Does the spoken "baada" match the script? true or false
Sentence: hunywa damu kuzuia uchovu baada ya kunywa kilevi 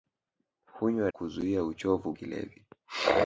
false